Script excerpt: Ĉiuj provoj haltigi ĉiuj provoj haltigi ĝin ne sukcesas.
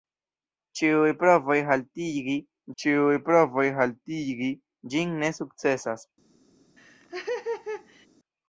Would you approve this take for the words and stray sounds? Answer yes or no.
no